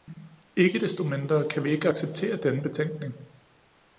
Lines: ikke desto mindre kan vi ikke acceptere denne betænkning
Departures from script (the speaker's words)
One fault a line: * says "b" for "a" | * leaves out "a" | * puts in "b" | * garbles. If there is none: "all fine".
all fine